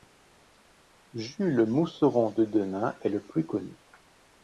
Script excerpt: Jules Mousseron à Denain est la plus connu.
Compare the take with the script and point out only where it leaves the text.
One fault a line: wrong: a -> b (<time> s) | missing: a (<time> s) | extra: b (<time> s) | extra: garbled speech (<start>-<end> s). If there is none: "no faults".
wrong: à -> de (2.3 s)
wrong: la -> le (3.1 s)